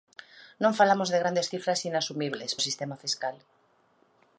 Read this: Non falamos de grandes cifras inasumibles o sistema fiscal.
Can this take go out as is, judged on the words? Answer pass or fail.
pass